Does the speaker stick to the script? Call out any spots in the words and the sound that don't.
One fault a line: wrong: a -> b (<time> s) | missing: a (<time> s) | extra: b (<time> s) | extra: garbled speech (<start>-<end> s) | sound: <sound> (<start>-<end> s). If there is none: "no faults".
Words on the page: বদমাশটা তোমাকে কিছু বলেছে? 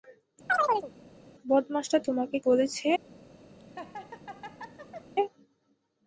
sound: chirp (0.5-0.9 s)
missing: কিছু (2.4 s)
sound: laugh (3.6-5.1 s)